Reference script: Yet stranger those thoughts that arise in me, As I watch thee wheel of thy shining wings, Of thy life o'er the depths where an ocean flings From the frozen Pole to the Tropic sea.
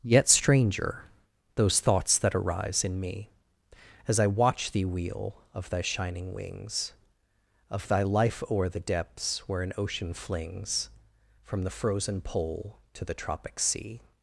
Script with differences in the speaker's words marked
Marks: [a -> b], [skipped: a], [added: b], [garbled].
Yet stranger those thoughts that arise in me, As I watch thee wheel of thy shining wings, Of thy life o'er the depths where an ocean flings From the frozen Pole to the Tropic sea.